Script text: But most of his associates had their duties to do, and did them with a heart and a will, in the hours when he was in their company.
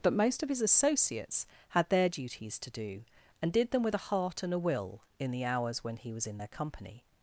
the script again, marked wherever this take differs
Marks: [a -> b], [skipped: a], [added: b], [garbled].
But most of his associates had their duties to do, and did them with a heart and a will, in the hours when he was in their company.